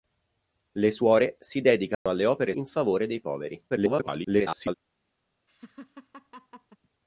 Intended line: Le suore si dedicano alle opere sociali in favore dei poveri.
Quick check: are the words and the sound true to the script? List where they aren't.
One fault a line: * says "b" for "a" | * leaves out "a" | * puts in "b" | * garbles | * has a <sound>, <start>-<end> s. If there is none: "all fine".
* has a dropout, 1.9-2.1 s
* leaves out "sociali"
* garbles
* has a laugh, 5.5-6.8 s